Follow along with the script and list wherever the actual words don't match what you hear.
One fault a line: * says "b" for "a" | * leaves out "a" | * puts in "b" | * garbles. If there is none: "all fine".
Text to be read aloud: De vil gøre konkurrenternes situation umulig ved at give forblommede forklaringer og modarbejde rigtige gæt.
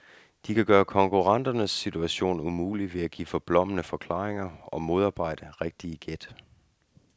* says "kan" for "vil"